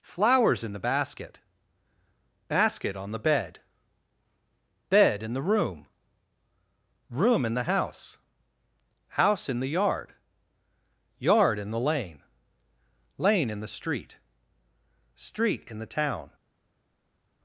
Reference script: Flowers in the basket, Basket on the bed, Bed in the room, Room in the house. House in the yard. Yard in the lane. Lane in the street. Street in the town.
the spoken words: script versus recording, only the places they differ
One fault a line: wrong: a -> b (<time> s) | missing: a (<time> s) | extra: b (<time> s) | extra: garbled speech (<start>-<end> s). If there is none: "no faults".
no faults